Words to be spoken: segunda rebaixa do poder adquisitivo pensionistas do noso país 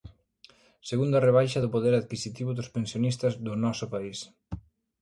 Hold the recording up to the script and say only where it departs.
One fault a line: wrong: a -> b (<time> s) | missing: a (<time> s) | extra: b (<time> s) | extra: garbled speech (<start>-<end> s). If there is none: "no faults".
extra: dos (2.6 s)